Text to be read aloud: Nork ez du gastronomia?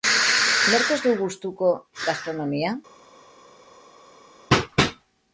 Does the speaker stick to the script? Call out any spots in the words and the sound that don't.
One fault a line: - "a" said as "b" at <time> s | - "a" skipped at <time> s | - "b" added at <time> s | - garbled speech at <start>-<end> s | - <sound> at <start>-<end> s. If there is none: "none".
- "gustuko" added at 1.2 s